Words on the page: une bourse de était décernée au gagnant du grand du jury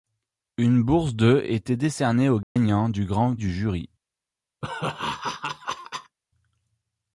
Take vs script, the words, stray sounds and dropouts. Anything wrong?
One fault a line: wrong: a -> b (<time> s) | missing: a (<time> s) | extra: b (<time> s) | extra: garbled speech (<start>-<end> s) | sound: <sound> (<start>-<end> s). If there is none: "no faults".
sound: dropout (2.4-2.6 s)
sound: laugh (4.6-6.2 s)